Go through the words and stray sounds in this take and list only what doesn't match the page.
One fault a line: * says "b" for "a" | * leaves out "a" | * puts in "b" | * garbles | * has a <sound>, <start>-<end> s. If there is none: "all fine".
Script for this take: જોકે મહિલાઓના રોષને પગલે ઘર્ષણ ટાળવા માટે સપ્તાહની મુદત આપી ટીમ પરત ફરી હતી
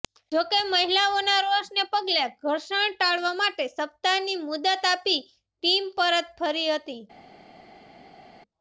all fine